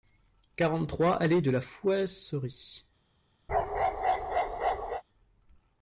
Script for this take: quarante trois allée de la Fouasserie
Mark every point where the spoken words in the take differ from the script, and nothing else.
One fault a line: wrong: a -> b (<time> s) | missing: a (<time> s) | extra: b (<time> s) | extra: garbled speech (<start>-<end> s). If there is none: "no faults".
no faults